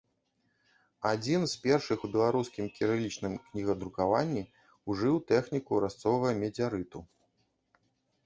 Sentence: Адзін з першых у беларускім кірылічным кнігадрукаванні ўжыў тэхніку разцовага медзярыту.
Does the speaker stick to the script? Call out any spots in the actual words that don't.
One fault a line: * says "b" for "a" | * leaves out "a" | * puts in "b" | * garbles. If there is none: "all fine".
all fine